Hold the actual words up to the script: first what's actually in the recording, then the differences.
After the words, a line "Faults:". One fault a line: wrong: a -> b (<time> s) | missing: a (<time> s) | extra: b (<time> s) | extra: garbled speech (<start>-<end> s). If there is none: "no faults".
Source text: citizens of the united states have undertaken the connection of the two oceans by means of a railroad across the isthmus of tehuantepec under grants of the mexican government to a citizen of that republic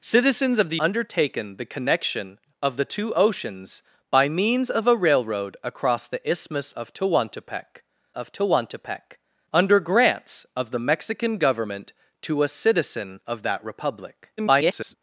citizens of the undertaken the connection of the two oceans by means of a railroad across the isthmus of tehuantepec of tehuantepec under grants of the mexican government to a citizen of that republic [garbled]
Faults:
missing: united states have (0.8 s)
extra: of tehuantepec (8.1 s)
extra: garbled speech (14.4-14.9 s)